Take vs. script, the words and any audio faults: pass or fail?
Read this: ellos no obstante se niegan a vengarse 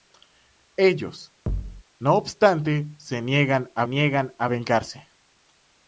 fail